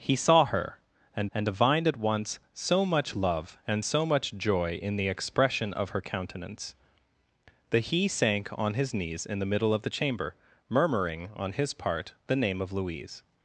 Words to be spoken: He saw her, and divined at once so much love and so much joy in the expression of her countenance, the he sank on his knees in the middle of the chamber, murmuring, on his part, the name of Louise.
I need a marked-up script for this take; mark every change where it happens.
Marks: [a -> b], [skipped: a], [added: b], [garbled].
He saw her, and [added: and] divined at once so much love and so much joy in the expression of her countenance, the he sank on his knees in the middle of the chamber, murmuring, on his part, the name of Louise.